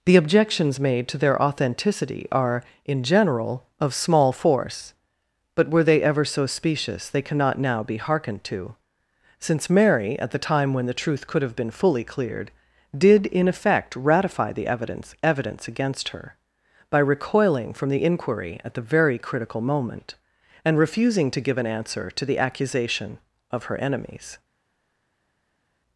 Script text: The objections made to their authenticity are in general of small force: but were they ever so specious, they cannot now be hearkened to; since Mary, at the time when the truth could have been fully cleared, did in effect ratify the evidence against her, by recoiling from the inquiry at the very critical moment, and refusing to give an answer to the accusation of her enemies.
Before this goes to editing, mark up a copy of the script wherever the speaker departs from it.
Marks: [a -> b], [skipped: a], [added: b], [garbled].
The objections made to their authenticity are in general of small force: but were they ever so specious, they cannot now be hearkened to; since Mary, at the time when the truth could have been fully cleared, did in effect ratify the evidence [added: evidence] against her, by recoiling from the inquiry at the very critical moment, and refusing to give an answer to the accusation of her enemies.